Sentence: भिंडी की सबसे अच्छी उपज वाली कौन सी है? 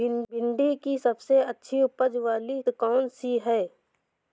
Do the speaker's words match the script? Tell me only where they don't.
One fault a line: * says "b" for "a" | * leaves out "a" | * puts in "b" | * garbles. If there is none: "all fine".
all fine